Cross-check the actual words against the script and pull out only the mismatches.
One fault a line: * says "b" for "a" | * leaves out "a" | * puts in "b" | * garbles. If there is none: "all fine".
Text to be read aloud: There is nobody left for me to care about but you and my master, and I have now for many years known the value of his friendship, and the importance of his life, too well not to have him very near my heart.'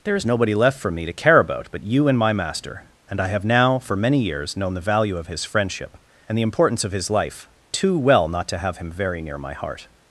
all fine